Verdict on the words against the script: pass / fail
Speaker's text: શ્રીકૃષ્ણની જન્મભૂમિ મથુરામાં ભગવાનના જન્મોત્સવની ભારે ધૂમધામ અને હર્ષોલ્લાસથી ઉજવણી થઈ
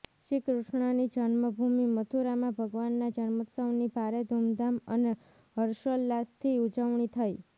pass